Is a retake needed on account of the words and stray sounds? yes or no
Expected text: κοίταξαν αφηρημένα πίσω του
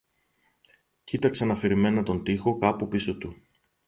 yes